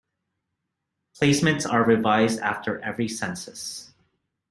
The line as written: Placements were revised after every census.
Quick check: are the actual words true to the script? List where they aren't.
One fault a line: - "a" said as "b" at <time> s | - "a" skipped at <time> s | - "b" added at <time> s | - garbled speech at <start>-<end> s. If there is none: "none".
- "were" said as "are" at 1.7 s